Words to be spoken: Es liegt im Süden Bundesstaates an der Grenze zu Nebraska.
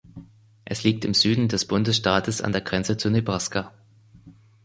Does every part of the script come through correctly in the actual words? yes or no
no